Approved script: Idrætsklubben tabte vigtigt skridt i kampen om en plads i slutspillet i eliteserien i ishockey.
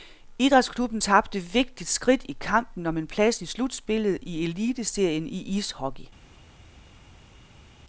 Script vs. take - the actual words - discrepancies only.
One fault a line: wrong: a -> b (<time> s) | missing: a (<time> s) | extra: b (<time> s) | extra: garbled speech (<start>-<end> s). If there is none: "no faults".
no faults